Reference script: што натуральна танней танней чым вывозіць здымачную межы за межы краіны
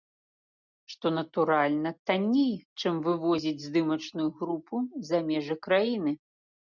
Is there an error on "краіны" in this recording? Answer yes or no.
no